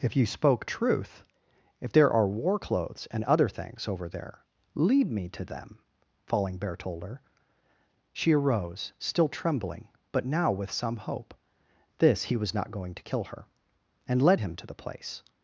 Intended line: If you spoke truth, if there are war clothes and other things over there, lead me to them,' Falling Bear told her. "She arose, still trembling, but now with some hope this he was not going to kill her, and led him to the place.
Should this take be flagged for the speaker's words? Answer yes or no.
no